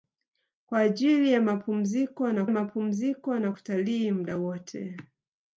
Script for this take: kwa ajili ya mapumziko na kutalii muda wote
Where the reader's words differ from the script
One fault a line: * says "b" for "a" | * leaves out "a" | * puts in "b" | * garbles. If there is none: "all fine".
* puts in "mapumziko na"